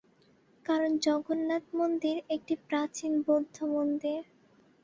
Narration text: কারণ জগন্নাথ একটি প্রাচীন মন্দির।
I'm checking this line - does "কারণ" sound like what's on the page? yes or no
yes